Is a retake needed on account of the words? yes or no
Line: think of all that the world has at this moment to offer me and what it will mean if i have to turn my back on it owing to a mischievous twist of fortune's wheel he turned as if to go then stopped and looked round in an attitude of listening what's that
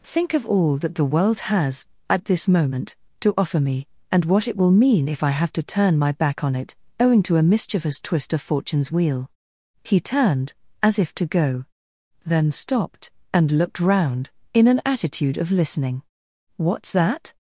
no